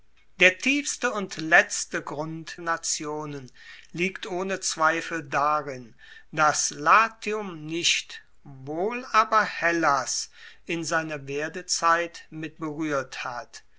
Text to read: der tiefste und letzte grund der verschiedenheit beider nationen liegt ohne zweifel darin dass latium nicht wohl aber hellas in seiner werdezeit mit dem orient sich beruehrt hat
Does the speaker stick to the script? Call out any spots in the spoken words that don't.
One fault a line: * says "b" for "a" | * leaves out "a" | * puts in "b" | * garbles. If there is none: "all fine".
* leaves out "der verschiedenheit beider"
* leaves out "dem orient sich"